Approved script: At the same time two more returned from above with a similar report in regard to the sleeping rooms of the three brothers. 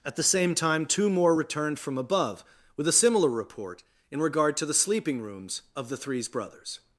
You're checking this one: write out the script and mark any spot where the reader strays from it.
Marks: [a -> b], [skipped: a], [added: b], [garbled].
At the same time two more returned from above with a similar report in regard to the sleeping rooms of the [three -> threes] brothers.